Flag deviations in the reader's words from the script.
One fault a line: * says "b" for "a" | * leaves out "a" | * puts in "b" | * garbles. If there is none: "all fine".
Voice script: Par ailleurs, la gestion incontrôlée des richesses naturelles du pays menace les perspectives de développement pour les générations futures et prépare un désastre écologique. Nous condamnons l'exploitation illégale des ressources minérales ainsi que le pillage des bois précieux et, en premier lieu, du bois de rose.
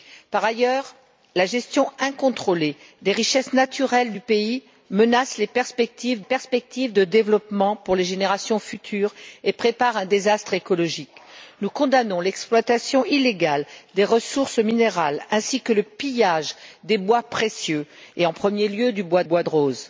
* puts in "perspectives"
* puts in "bois"